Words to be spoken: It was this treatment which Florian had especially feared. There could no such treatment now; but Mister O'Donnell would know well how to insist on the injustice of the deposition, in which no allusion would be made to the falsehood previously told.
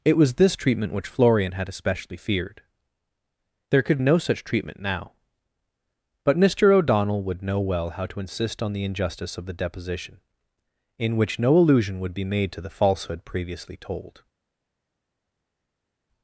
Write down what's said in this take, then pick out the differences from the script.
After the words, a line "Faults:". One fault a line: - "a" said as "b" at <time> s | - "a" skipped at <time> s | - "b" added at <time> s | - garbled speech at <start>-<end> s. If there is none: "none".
It was this treatment which Florian had especially feared. There could no such treatment now; but Mister O'Donnell would know well how to insist on the injustice of the deposition, in which no allusion would be made to the falsehood previously told.
Faults:
none